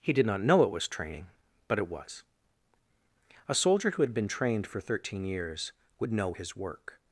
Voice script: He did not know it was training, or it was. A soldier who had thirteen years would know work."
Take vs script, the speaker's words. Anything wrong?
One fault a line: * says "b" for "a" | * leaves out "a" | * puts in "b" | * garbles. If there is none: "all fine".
* says "but" for "or"
* puts in "been trained for"
* puts in "his"